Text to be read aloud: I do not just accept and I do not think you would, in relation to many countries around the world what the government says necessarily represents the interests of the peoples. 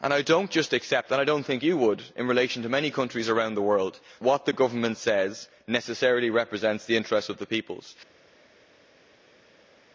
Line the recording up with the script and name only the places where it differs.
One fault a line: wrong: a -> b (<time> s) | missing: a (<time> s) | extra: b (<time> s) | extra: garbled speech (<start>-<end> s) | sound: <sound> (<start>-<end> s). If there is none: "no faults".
no faults